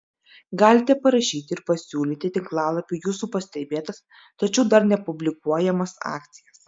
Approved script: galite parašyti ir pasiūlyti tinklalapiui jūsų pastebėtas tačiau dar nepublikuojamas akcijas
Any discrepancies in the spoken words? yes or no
no